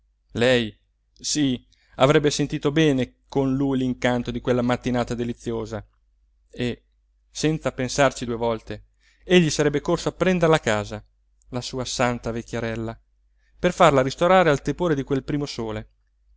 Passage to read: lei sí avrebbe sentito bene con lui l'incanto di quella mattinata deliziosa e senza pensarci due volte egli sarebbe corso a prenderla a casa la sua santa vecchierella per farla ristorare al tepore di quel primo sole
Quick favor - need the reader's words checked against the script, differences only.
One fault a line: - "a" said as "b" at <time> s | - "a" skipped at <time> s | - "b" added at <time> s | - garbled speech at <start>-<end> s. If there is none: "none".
none